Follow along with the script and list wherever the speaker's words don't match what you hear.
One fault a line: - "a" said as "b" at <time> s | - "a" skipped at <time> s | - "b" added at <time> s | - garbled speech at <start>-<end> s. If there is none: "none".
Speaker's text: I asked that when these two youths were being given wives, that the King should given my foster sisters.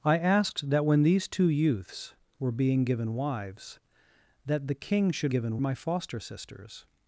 none